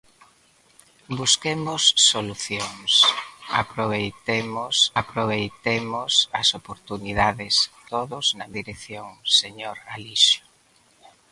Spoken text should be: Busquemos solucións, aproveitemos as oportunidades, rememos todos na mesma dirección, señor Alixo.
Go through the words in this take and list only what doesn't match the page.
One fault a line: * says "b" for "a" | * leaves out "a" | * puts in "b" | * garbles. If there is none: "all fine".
* puts in "aproveitemos"
* leaves out "rememos"
* leaves out "mesma"